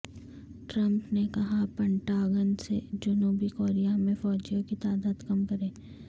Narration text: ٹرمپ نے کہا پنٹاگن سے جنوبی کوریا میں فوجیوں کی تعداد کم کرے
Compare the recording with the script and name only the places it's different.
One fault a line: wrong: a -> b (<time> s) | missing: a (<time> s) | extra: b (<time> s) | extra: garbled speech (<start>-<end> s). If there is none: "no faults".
no faults